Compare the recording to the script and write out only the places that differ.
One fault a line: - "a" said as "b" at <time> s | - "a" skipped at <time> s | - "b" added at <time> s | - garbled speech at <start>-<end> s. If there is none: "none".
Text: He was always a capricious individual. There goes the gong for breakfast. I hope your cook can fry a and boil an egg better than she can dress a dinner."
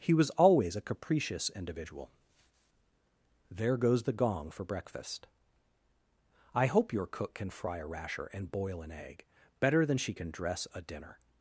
- "rasher" added at 7.8 s